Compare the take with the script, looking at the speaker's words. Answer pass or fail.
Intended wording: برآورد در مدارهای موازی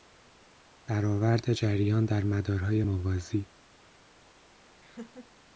fail